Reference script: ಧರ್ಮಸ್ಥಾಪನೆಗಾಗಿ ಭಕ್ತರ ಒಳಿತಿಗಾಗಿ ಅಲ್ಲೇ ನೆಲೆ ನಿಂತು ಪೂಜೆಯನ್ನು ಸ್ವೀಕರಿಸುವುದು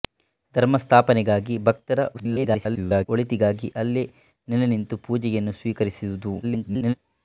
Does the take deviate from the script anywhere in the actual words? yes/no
yes